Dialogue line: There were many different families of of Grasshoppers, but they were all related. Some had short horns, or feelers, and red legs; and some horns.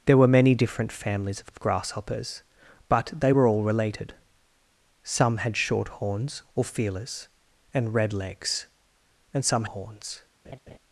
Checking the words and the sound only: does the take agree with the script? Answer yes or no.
no